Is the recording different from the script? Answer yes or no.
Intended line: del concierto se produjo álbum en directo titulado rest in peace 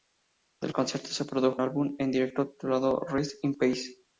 no